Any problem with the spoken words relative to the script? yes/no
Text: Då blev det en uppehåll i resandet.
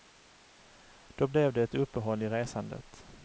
yes